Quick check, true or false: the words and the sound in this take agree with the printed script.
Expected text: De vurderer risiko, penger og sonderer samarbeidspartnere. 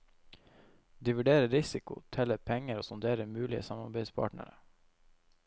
false